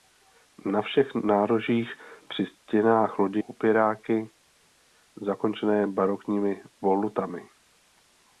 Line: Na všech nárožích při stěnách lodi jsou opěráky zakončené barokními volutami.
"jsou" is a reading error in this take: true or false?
true